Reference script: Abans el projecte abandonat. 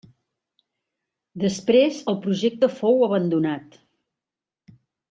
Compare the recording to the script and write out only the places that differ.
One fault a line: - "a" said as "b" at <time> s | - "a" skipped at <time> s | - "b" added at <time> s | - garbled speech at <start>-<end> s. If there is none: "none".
- "Abans" said as "Després" at 1.4 s
- "fou" added at 2.8 s